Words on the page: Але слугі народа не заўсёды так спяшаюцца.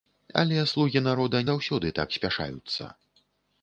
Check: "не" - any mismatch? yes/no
yes